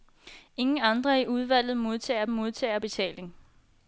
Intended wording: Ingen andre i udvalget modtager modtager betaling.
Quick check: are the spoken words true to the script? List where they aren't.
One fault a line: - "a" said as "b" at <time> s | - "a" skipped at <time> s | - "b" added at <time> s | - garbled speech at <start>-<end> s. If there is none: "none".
none